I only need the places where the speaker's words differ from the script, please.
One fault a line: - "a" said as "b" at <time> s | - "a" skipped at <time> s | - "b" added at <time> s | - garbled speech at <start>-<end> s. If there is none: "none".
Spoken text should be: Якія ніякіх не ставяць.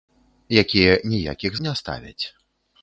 none